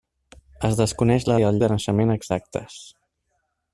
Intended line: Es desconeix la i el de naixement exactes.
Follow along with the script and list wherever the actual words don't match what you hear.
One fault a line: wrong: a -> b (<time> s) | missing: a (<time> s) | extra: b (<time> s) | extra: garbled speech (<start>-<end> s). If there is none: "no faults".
no faults